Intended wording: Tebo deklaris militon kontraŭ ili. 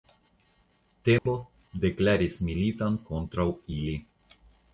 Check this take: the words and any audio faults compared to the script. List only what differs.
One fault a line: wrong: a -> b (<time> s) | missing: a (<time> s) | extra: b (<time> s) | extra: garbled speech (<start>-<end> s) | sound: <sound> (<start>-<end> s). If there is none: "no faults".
sound: dropout (1.2-1.3 s)